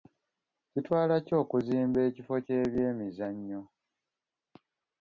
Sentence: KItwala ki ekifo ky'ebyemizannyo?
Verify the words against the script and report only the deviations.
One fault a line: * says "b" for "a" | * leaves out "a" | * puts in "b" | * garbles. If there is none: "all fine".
* puts in "okuzimba"